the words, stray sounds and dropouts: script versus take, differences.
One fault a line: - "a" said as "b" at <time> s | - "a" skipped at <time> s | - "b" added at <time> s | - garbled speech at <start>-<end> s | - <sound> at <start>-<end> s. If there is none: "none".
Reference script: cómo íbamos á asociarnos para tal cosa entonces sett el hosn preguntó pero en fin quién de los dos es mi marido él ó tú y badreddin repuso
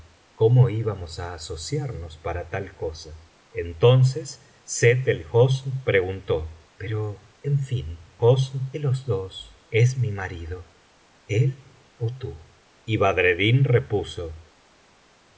- "quién" said as "hosn" at 8.2 s